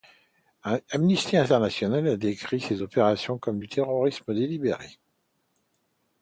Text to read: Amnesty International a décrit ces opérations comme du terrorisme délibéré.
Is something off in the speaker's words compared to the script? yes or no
no